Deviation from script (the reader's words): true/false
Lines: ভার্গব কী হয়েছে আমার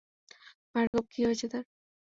true